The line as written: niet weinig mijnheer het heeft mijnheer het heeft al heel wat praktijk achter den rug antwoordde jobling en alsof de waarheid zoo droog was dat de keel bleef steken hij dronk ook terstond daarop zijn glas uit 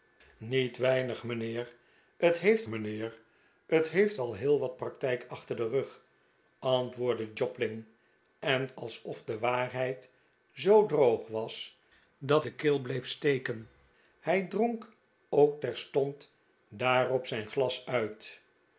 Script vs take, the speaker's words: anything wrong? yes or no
no